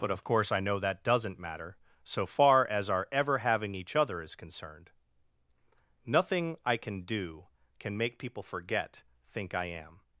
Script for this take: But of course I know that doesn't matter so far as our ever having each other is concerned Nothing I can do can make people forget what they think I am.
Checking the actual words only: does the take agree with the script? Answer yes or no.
no